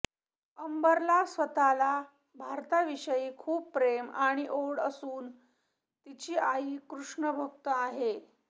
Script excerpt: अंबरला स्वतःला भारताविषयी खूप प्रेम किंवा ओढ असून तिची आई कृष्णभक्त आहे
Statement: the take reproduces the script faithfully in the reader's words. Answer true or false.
false